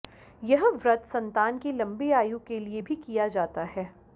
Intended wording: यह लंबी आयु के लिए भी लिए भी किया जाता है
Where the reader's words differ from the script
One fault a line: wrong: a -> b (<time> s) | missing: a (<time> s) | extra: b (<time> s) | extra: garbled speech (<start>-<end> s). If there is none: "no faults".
extra: व्रत संतान की (0.8 s)
missing: लिए भी (3.0 s)